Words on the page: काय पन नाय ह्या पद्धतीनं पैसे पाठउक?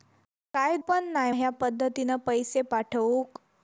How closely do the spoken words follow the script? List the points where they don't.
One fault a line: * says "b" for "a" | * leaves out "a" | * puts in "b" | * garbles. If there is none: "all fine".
all fine